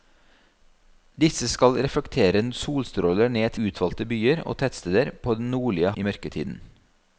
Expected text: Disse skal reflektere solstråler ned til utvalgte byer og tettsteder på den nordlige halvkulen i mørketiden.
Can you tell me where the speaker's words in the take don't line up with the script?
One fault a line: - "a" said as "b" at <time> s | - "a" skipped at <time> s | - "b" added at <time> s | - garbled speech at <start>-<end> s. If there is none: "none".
- "til" skipped at 3.5 s
- "halvkulen" skipped at 5.9 s